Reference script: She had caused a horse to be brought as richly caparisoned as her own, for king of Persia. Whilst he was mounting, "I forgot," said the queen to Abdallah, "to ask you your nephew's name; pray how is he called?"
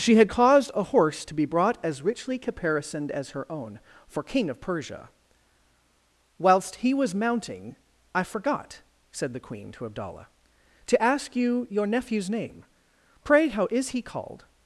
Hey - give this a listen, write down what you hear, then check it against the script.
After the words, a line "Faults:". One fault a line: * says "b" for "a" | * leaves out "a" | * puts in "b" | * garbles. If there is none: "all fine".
She had caused a horse to be brought as richly caparisoned as her own, for king of Persia. Whilst he was mounting, "I forgot," said the queen to Abdallah, "to ask you your nephew's name; pray how is he called?"
Faults:
all fine